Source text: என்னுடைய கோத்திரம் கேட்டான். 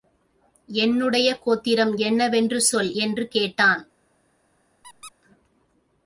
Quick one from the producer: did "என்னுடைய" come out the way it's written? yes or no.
yes